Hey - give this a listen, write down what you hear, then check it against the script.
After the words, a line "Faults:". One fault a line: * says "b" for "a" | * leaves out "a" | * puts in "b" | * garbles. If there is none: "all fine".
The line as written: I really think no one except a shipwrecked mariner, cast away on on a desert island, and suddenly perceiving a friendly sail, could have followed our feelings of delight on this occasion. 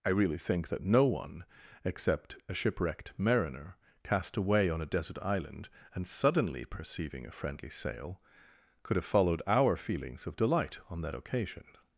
I really think that no one except a shipwrecked mariner, cast away on a desert island, and suddenly perceiving a friendly sail, could have followed our feelings of delight on that occasion.
Faults:
* puts in "that"
* leaves out "on"
* says "that" for "this"